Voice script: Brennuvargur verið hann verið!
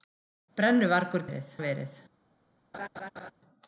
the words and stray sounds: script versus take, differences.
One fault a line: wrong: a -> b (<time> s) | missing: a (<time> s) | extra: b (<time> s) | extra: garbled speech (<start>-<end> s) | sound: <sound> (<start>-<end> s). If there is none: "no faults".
sound: laugh (2.7-3.3 s)